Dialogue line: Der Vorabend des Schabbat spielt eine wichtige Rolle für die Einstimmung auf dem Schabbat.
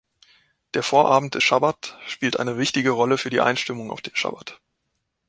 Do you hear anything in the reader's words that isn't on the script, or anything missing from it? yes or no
yes